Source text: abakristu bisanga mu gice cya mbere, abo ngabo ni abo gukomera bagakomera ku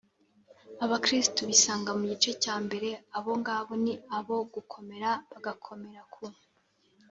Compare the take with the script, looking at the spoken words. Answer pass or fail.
pass